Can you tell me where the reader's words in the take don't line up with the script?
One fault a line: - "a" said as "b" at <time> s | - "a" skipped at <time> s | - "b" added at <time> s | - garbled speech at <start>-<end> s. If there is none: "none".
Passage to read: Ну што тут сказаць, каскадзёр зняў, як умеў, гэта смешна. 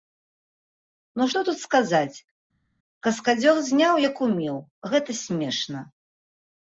none